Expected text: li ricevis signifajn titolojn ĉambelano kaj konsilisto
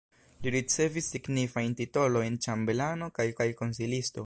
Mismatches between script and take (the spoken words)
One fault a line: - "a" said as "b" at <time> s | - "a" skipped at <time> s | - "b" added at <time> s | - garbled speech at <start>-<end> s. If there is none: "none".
- "kaj" added at 3.4 s